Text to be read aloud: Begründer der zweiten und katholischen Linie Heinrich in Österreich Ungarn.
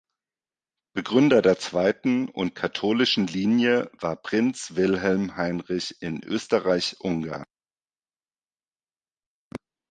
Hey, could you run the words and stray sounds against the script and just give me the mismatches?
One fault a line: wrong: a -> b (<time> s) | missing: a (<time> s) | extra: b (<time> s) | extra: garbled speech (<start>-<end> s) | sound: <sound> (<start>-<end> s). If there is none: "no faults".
extra: war Prinz Wilhelm (4.0 s)